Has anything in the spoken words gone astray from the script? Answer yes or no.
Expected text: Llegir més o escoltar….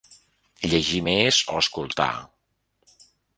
no